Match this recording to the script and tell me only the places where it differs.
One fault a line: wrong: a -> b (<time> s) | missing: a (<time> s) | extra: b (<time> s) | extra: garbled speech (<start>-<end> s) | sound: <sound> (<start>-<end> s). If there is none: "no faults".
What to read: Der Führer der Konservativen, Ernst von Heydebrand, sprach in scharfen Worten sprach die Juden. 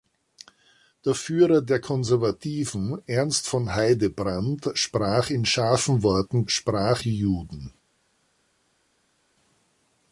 no faults